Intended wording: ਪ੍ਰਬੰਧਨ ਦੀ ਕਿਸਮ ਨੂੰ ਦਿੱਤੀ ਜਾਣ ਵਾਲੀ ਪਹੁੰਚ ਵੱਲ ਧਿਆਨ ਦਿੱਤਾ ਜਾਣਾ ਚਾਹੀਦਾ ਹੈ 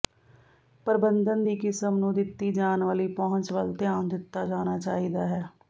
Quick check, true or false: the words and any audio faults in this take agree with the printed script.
true